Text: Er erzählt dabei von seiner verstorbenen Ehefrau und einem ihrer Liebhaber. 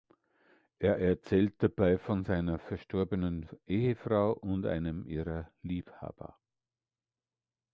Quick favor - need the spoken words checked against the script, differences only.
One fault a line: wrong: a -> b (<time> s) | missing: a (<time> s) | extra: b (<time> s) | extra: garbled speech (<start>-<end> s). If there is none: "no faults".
no faults